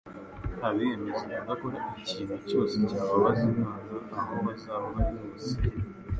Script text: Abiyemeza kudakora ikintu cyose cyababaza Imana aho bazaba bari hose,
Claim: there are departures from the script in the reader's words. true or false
false